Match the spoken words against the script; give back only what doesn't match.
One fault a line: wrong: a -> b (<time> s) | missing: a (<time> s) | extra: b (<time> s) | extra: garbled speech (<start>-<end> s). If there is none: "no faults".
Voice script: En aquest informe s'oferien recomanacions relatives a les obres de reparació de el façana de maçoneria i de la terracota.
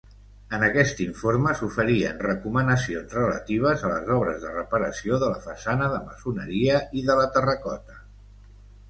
wrong: el -> la (5.3 s)